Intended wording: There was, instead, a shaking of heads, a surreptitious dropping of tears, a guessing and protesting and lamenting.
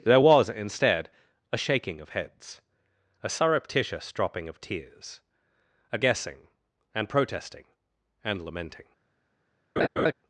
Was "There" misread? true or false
false